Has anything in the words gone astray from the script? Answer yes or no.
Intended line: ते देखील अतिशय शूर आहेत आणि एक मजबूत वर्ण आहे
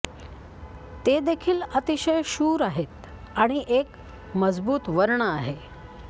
no